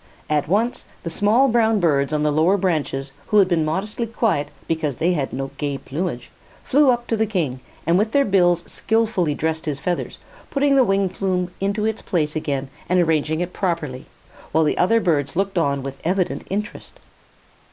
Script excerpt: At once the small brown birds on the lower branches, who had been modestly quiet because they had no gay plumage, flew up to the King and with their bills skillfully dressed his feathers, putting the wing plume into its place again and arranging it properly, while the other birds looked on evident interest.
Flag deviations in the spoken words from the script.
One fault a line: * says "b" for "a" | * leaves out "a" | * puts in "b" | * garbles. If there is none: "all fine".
* puts in "with"